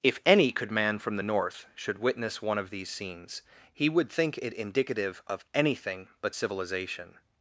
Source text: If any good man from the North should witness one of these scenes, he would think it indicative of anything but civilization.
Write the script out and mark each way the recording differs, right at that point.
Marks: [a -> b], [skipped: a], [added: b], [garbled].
If any [good -> could] man from the North should witness one of these scenes, he would think it indicative of anything but civilization.